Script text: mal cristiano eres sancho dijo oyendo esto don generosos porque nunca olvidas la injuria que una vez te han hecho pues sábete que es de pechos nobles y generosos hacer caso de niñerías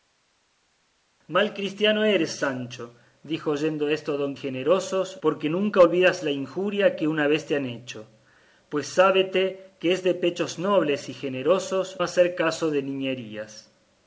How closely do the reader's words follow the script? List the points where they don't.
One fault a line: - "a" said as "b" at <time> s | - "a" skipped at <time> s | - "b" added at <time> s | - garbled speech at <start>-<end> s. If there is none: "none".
none